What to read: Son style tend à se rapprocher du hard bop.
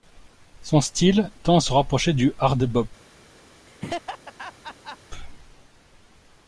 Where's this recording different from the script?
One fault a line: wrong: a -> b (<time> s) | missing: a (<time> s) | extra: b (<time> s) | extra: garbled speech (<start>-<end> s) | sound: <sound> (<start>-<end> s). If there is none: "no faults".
sound: laugh (3.7-5.0 s)